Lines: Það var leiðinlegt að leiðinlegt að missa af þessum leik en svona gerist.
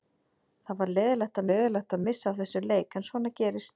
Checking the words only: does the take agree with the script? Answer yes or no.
yes